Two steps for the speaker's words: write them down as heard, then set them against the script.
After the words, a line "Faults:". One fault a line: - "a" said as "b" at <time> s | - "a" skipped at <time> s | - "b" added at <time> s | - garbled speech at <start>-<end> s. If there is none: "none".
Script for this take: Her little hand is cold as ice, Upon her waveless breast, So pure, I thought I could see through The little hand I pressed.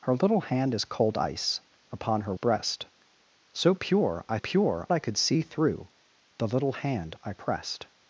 Her little hand is cold ice, Upon her breast, So pure, I pure I could see through The little hand I pressed.
Faults:
- "as" skipped at 1.2 s
- "waveless" skipped at 2.3 s
- "thought" said as "pure" at 4.4 s